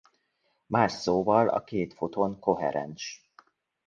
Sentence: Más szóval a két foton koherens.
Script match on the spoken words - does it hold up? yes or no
yes